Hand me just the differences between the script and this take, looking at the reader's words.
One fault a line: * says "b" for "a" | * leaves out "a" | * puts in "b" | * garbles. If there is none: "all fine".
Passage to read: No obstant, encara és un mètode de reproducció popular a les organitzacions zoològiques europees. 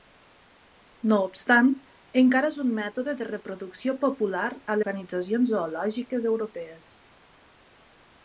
* leaves out "les"